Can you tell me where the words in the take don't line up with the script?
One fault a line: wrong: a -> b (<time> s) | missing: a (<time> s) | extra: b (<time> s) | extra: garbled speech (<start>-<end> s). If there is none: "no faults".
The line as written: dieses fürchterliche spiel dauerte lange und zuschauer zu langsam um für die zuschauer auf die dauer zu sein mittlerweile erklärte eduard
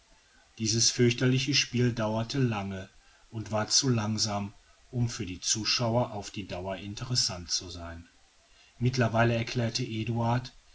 wrong: zuschauer -> war (3.5 s)
extra: interessant (6.8 s)